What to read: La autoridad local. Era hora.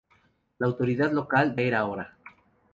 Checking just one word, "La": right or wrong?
right